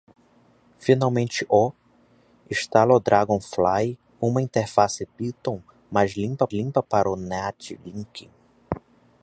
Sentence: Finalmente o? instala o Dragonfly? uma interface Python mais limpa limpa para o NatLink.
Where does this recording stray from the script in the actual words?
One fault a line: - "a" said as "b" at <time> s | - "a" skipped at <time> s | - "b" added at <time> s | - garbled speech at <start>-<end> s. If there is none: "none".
none